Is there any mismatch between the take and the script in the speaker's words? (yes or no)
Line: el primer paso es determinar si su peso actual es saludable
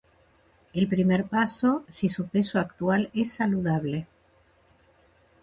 yes